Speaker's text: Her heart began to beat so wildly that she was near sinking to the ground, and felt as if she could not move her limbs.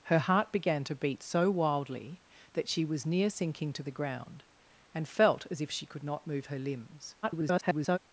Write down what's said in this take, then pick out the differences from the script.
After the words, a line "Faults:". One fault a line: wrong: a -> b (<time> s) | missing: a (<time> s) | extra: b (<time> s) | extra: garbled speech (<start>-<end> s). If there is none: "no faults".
Her heart began to beat so wildly that she was near sinking to the ground, and felt as if she could not move her limbs. [garbled]
Faults:
extra: garbled speech (7.2-8.0 s)